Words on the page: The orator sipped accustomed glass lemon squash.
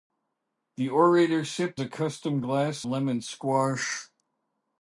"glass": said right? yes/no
yes